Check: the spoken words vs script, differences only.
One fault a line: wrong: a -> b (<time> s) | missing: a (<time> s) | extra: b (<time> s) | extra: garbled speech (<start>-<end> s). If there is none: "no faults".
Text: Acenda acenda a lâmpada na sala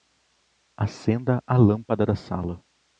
missing: acenda (1.4 s)
wrong: na -> da (2.1 s)